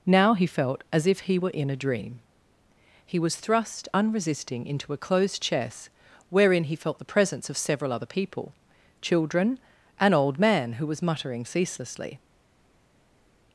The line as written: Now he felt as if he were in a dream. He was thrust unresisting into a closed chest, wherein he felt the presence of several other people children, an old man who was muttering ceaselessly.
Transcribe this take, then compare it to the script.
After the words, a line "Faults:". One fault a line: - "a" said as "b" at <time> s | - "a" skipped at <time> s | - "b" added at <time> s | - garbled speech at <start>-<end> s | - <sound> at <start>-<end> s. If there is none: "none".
Now he felt as if he were in a dream. He was thrust unresisting into a closed chest, wherein he felt the presence of several other people children, an old man who was muttering ceaselessly.
Faults:
none